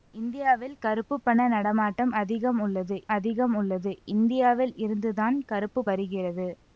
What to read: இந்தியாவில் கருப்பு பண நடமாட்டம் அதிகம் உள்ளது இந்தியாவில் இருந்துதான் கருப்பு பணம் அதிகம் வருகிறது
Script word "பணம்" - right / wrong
wrong